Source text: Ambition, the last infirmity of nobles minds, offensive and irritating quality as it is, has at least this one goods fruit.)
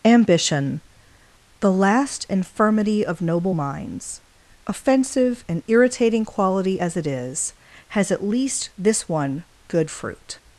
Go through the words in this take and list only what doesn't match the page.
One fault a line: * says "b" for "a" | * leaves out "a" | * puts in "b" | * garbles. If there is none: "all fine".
* says "noble" for "nobles"
* says "good" for "goods"